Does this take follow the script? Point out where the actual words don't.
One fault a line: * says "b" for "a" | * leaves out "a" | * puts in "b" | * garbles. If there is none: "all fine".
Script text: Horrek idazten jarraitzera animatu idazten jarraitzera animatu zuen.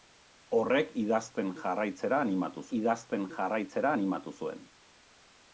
all fine